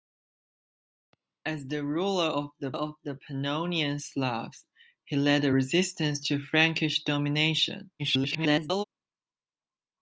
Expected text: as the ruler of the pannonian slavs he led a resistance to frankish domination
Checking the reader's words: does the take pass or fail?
fail